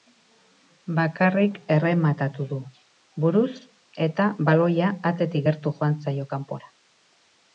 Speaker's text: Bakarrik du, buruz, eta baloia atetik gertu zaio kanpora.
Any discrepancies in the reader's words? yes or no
yes